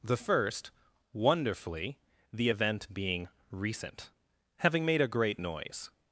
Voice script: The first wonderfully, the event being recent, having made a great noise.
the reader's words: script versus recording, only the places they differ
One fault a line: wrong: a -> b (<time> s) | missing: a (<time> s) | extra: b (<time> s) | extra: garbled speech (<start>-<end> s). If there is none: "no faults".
no faults